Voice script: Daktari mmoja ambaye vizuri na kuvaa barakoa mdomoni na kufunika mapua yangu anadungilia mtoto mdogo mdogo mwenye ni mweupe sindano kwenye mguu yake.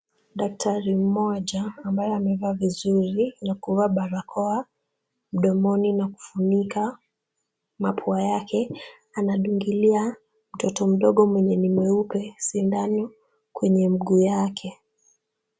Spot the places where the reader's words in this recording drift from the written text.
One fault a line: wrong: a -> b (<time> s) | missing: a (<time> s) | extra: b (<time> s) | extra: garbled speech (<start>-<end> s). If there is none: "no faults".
extra: amevaa (2.1 s)
wrong: yangu -> yake (8.2 s)
missing: mdogo (11.2 s)